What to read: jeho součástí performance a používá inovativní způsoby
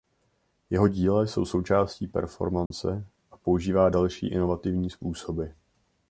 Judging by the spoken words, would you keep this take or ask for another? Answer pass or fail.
fail